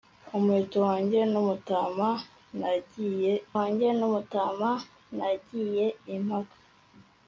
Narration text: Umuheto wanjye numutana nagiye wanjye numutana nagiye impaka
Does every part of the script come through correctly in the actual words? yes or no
yes